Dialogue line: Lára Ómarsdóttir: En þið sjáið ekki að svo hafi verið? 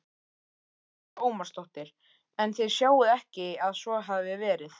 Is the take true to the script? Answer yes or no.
yes